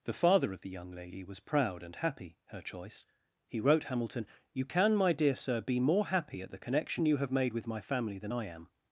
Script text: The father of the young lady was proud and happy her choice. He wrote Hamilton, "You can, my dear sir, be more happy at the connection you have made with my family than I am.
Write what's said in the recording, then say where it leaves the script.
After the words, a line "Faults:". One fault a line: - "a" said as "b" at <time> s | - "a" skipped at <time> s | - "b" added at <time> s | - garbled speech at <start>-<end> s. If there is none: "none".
The father of the young lady was proud and happy her choice. He wrote Hamilton, "You can, my dear sir, be more happy at the connection you have made with my family than I am.
Faults:
none